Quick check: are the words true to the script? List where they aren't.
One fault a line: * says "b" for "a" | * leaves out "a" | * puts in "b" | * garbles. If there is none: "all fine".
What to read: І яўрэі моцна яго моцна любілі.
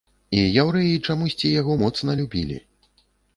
* says "чамусьці" for "моцна"